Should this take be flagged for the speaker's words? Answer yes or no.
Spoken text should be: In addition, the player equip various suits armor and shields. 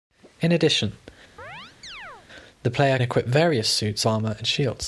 no